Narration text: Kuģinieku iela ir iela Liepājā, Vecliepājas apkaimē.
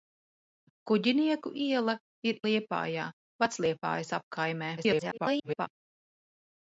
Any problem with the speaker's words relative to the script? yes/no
yes